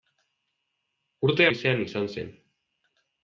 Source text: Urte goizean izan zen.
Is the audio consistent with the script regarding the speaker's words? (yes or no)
yes